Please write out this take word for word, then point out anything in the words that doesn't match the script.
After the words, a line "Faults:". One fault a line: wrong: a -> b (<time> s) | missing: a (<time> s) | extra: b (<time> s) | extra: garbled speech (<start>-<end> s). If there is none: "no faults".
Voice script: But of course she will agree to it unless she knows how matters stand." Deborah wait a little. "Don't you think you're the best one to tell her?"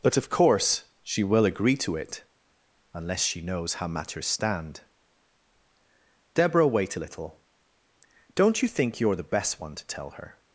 But of course she will agree to it unless she knows how matters stand." Deborah wait a little. "Don't you think you're the best one to tell her?"
Faults:
no faults